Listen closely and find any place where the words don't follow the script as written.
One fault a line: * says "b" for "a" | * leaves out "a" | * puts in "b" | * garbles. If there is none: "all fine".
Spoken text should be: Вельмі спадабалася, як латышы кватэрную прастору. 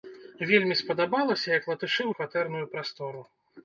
all fine